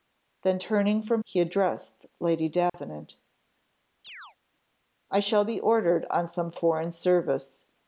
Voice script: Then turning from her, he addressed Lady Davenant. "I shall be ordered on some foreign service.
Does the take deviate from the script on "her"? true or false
true